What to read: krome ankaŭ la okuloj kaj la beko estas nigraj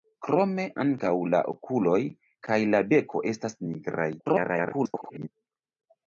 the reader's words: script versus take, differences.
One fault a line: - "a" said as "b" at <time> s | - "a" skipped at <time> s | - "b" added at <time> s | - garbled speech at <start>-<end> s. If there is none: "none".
- garbled speech at 4.2-5.3 s